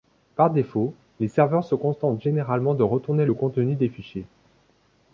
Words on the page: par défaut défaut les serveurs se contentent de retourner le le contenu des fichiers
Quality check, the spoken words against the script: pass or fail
fail